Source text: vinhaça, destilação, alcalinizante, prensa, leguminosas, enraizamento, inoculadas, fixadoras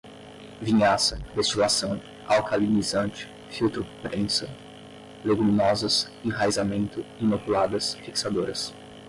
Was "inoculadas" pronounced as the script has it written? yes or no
yes